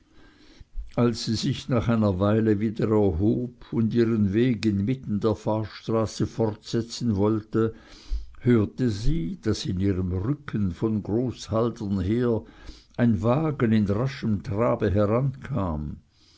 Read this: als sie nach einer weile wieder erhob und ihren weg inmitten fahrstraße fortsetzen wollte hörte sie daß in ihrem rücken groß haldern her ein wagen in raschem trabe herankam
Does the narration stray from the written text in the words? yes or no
yes